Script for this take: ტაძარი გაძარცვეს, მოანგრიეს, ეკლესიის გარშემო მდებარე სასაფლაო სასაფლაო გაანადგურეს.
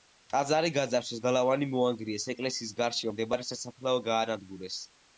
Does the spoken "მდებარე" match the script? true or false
true